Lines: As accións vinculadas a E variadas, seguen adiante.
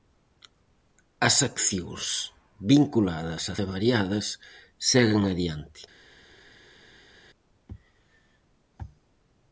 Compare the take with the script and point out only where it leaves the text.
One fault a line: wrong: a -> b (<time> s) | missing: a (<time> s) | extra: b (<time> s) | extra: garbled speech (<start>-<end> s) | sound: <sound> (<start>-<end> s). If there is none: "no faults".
no faults